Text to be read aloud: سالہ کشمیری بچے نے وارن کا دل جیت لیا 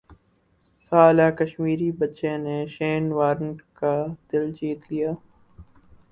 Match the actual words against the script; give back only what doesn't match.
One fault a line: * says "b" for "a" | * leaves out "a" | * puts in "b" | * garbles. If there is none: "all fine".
* puts in "شین"